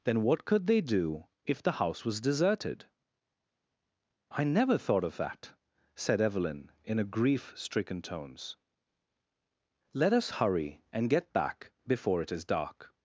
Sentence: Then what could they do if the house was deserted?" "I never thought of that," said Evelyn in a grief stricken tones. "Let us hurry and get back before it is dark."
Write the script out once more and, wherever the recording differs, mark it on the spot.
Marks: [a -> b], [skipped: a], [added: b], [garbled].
Then what could they do if the house was deserted?" "I never thought of that," said Evelyn in a grief stricken tones. "Let us hurry and get back before it is dark."